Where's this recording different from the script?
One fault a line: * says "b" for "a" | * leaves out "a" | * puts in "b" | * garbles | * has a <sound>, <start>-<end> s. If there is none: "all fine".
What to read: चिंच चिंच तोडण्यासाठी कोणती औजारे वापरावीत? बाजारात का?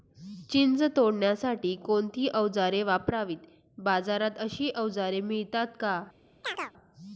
* leaves out "चिंच"
* puts in "अशी औजारे मिळतात"
* has a chirp, 6.4-6.7 s